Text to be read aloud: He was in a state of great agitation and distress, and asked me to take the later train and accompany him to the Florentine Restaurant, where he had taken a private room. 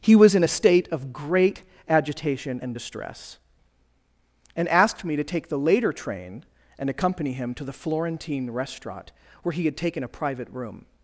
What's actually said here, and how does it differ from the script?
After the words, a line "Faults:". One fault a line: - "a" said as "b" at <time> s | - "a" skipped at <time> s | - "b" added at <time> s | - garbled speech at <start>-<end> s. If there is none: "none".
He was in a state of great agitation and distress, and asked me to take the later train and accompany him to the Florentine Restaurant, where he had taken a private room.
Faults:
none